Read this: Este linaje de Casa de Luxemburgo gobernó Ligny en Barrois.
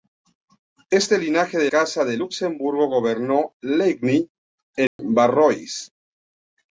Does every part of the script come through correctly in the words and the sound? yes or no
no